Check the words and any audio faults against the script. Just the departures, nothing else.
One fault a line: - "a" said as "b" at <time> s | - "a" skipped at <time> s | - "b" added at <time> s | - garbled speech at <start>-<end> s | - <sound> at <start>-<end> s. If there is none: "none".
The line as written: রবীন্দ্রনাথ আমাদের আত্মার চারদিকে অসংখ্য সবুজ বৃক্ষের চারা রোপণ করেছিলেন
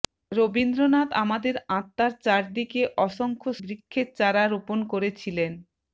- "সবুজ" skipped at 3.5 s